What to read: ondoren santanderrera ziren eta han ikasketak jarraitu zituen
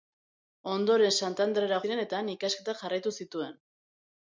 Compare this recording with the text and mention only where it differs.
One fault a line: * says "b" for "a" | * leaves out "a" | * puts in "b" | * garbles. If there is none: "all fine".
all fine